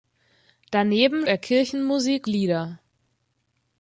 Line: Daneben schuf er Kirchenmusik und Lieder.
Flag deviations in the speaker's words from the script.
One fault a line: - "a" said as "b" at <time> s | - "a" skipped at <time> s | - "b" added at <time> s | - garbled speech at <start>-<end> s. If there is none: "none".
- "schuf" skipped at 1.3 s
- "und" skipped at 2.3 s